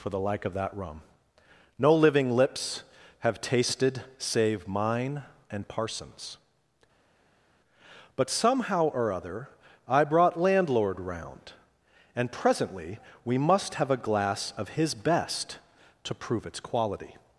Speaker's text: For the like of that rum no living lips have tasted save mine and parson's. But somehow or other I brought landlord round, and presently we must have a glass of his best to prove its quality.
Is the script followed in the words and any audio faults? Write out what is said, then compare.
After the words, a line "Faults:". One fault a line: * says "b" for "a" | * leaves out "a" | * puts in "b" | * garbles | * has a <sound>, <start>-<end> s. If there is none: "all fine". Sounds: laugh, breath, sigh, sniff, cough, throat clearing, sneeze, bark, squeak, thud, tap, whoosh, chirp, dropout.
For the like of that rum no living lips have tasted save mine and parson's. But somehow or other I brought landlord round, and presently we must have a glass of his best to prove its quality.
Faults:
all fine